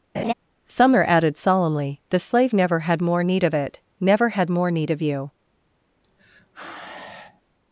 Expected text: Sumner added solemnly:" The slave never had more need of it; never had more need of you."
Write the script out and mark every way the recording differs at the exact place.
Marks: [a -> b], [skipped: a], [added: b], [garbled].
Sumner added solemnly:" The slave never had more need of it; never had more need of you."